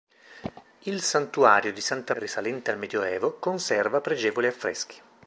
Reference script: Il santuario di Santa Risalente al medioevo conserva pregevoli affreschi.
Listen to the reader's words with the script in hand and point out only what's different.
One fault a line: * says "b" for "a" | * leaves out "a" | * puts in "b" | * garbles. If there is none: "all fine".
all fine